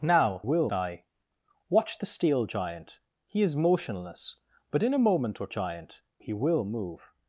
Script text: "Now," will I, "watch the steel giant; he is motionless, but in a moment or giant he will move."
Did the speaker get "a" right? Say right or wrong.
right